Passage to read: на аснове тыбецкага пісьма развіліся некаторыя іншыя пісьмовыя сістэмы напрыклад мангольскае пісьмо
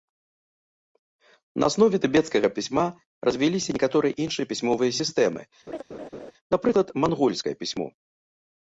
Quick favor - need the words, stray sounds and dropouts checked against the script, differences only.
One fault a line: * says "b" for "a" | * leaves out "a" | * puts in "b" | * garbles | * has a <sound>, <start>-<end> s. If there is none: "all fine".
* has a laugh, 5.7-6.3 s